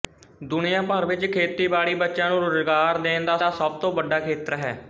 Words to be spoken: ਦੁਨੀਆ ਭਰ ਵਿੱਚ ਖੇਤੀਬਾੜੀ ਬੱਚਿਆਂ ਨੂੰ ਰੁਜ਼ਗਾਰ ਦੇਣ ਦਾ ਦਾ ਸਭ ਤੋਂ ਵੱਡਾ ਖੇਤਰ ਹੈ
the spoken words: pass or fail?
pass